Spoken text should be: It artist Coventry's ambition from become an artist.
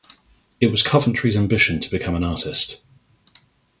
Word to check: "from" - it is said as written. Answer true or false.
false